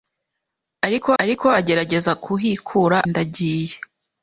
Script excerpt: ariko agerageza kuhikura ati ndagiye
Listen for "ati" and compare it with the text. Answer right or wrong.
wrong